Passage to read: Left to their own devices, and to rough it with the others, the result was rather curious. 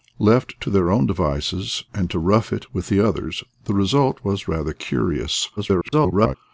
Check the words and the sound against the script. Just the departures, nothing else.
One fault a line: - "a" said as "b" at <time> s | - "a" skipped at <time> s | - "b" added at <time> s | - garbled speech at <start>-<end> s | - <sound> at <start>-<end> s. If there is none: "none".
- garbled speech at 5.6-6.4 s